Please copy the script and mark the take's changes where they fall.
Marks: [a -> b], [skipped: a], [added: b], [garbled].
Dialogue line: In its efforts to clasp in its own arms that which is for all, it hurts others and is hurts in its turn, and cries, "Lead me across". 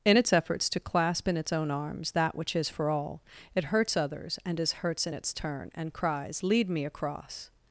In its efforts to clasp in its own arms that which is for all, it hurts others and is hurts in its turn, and cries, "Lead me across".